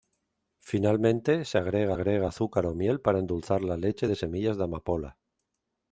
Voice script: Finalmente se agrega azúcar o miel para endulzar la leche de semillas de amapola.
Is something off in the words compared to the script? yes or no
yes